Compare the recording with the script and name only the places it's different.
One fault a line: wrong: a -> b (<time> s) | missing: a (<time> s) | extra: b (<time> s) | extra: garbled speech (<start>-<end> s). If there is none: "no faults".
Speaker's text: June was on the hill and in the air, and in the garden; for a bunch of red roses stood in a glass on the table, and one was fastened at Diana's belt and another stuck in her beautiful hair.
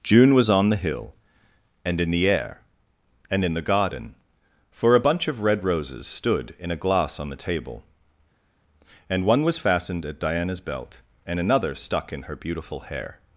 no faults